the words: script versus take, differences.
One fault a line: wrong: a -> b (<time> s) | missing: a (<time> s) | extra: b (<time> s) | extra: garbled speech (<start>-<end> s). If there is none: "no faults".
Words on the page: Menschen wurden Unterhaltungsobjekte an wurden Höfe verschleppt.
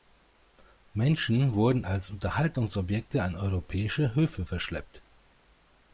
extra: als (1.8 s)
wrong: wurden -> europäische (3.3 s)